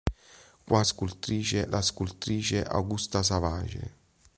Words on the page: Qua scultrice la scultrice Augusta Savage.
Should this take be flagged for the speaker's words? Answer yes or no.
no